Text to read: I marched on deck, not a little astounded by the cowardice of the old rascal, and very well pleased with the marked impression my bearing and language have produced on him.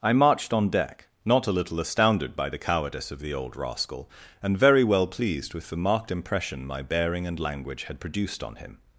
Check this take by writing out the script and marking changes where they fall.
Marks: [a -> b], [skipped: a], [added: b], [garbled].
I marched on deck, not a little astounded by the cowardice of the old rascal, and very well pleased with the marked impression my bearing and language [have -> had] produced on him.